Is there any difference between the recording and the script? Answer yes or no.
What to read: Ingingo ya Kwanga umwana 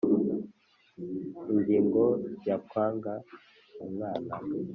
no